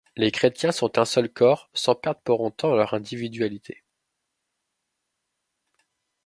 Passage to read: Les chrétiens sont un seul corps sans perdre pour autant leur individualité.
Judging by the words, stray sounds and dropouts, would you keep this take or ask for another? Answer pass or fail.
pass